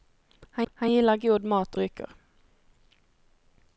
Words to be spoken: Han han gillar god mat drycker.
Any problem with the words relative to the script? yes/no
no